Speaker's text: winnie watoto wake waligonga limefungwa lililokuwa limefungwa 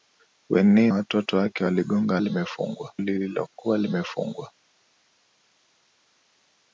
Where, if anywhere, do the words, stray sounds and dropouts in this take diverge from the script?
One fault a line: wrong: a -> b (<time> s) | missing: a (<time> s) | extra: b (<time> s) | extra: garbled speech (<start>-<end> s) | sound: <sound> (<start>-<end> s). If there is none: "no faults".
no faults